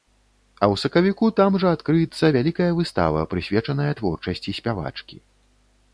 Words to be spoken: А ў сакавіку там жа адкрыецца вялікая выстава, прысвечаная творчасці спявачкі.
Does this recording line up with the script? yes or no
yes